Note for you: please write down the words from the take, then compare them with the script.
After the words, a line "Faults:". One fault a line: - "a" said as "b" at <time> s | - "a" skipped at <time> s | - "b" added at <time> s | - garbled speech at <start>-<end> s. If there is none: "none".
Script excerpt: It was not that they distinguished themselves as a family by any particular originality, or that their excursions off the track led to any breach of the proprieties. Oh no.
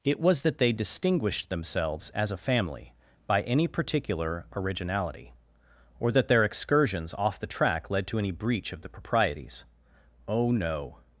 It was that they distinguished themselves as a family by any particular originality, or that their excursions off the track led to any breach of the proprieties. Oh no.
Faults:
- "not" skipped at 0.4 s